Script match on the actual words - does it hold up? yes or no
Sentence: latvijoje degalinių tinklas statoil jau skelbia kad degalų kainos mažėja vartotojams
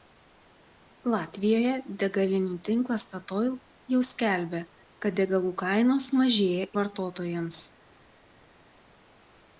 yes